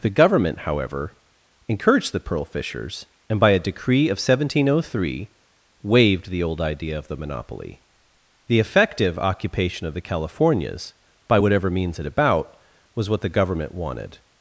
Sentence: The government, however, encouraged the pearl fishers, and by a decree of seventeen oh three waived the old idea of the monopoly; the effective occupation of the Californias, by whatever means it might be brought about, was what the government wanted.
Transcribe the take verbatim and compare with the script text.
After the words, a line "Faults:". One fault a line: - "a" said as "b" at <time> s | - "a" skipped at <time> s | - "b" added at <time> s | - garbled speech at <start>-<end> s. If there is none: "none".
The government, however, encouraged the pearl fishers, and by a decree of seventeen oh three waived the old idea of the monopoly; the effective occupation of the Californias, by whatever means it about, was what the government wanted.
Faults:
- "might be brought" skipped at 12.0 s